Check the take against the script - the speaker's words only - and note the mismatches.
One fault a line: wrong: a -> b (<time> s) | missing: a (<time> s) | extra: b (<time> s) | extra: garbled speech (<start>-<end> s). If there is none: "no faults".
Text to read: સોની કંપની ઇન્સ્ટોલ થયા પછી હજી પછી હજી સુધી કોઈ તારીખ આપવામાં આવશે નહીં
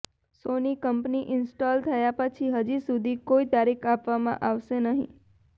missing: પછી હજી (2.8 s)